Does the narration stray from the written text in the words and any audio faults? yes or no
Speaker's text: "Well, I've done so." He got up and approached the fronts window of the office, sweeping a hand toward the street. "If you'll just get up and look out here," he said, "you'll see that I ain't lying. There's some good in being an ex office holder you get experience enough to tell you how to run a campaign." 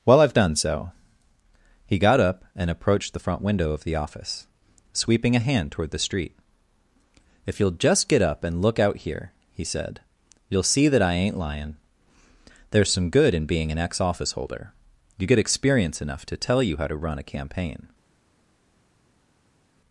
yes